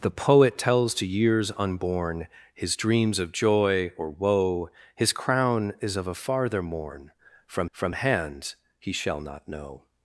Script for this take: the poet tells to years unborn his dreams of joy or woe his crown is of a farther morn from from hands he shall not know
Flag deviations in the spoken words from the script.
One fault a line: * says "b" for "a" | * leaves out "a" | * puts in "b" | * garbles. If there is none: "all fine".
all fine